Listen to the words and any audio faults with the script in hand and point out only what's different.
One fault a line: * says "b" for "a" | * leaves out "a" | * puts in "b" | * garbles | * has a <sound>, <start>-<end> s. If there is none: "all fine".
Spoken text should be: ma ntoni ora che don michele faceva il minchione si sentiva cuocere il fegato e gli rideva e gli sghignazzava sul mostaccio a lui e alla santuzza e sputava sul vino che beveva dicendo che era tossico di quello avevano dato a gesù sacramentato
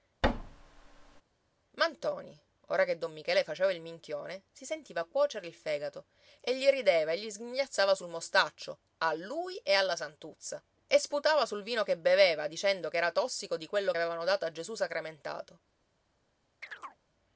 * has a thud, 0.2-1.2 s
* has a chirp, 16.6-17.0 s